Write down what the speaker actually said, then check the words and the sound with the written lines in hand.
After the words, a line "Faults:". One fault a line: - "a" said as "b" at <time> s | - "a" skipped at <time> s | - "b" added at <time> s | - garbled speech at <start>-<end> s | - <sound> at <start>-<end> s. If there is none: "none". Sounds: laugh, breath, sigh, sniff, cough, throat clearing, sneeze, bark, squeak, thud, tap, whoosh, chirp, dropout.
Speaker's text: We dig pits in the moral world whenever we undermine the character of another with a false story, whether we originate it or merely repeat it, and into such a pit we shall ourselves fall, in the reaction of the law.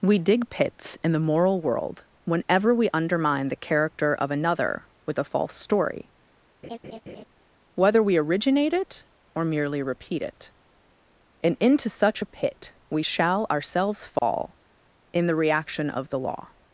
We dig pits in the moral world whenever we undermine the character of another with a false story, whether we originate it or merely repeat it, and into such a pit we shall ourselves fall, in the reaction of the law.
Faults:
- laugh at 6.6-7.2 s
- dropout at 14.2-14.2 s